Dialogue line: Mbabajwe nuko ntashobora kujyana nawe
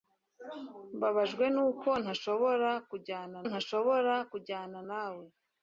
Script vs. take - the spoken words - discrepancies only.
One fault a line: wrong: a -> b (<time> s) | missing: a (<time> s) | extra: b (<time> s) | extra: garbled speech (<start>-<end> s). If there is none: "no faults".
extra: ntashobora kujyana (3.5 s)